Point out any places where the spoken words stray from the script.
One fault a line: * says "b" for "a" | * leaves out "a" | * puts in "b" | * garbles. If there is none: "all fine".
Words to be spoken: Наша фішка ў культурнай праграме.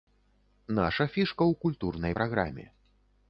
all fine